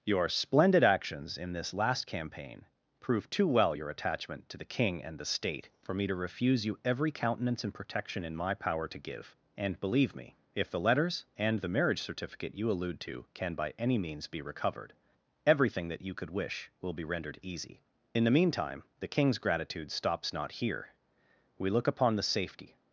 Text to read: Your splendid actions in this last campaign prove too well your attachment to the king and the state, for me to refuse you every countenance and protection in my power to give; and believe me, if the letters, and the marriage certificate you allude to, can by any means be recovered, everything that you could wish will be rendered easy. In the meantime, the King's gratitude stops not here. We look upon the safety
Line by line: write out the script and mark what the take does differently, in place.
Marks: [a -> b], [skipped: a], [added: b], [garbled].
Your splendid actions in this last campaign prove too well your attachment to the king and the state, for me to refuse you every countenance and protection in my power to give; and believe me, if the letters, and the marriage certificate you allude to, can by any means be recovered, everything that you could wish will be rendered easy. In the meantime, the King's gratitude stops not here. We look upon the safety